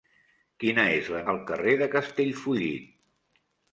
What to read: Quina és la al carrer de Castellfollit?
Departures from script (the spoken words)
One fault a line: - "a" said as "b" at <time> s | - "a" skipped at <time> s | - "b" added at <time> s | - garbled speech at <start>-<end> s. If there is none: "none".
none